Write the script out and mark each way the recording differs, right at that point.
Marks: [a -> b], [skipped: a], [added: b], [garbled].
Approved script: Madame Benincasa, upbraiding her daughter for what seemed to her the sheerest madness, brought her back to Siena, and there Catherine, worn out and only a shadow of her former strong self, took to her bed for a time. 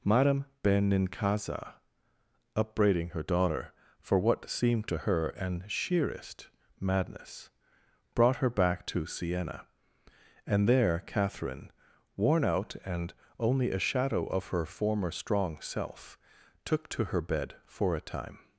Madame Benincasa, upbraiding her daughter for what seemed to her [the -> an] sheerest madness, brought her back to Siena, and there Catherine, worn out and only a shadow of her former strong self, took to her bed for a time.